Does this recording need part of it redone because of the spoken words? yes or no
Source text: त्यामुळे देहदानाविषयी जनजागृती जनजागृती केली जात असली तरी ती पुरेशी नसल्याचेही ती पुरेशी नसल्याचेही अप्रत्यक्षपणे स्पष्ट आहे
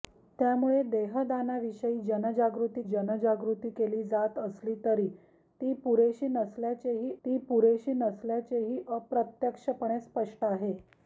no